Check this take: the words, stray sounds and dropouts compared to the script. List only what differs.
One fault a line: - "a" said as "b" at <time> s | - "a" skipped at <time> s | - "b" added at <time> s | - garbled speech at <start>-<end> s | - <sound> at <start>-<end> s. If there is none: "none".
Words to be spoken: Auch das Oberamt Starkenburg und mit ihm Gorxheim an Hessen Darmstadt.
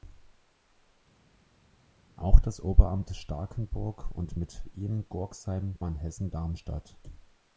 none